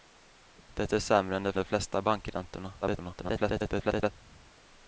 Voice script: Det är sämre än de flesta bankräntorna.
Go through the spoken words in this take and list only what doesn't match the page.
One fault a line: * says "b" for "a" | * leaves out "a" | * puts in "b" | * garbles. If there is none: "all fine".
* puts in "de"
* garbles